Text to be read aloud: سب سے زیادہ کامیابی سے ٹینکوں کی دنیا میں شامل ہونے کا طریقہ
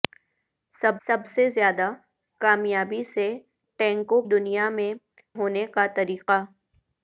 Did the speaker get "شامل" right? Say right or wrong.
wrong